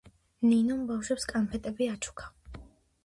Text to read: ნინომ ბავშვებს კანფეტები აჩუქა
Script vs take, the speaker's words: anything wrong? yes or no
no